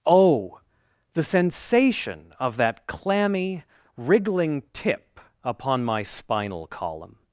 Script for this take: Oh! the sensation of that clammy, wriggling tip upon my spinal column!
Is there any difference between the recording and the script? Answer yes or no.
no